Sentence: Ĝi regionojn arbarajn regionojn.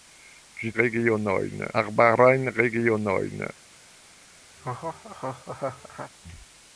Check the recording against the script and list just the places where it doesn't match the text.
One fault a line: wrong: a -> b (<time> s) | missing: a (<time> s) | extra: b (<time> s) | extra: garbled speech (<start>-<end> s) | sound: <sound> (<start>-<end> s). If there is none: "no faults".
sound: laugh (4.6-6.1 s)